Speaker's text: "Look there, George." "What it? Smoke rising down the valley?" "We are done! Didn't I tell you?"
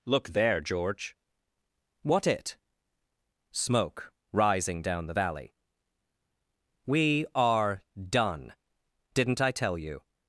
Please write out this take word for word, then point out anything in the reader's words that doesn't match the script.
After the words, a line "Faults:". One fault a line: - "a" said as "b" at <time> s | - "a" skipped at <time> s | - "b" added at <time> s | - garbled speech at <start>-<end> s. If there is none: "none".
"Look there, George." "What it? Smoke rising down the valley?" "We are done! Didn't I tell you?"
Faults:
none